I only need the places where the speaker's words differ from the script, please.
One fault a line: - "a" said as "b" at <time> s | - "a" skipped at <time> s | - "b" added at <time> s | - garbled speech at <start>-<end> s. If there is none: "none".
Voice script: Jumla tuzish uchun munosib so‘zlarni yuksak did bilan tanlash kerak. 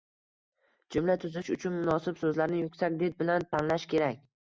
none